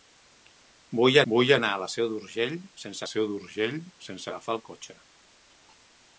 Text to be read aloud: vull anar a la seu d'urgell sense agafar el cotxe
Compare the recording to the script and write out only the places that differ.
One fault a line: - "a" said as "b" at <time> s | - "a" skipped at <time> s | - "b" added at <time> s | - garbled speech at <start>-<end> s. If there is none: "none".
- "vull" added at 1.3 s
- "seu d'urgell sense" added at 3.1 s